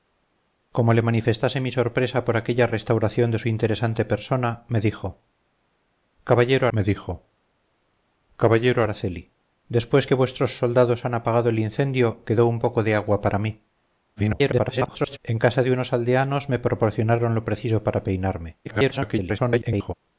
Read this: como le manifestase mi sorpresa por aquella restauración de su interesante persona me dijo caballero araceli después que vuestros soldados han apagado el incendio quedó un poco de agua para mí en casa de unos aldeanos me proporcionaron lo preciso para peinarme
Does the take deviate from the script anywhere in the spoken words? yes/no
yes